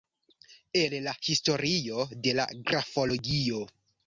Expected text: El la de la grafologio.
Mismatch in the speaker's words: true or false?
true